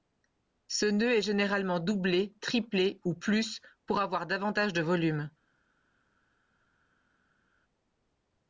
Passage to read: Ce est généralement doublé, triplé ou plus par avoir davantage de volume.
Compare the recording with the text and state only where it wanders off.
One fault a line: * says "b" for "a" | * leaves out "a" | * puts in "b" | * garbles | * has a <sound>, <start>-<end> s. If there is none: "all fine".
* puts in "nœud"
* says "pour" for "par"